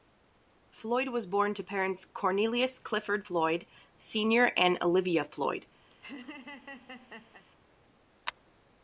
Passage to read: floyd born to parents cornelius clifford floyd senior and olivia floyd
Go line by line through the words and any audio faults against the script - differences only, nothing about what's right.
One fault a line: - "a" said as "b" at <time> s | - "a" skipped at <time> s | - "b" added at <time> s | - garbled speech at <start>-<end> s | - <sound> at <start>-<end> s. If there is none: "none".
- "was" added at 1.1 s
- laugh at 5.9-7.4 s